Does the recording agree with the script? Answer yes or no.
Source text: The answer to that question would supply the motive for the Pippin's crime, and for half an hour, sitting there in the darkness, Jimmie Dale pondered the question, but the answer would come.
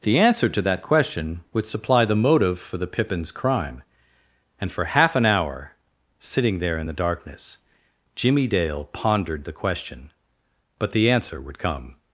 yes